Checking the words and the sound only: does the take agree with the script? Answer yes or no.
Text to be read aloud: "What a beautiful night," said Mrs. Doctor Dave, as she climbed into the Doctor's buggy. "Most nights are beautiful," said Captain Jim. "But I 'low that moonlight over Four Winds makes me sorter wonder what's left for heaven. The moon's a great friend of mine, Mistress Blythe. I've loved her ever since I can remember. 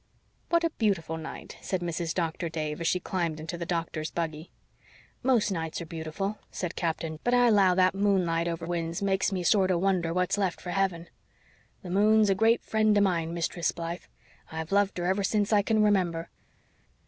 no